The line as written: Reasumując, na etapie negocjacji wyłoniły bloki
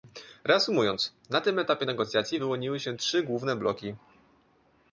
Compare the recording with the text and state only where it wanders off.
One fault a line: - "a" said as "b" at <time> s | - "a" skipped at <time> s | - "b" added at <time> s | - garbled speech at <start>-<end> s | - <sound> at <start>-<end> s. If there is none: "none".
- "tym" added at 1.4 s
- "się trzy główne" added at 2.8 s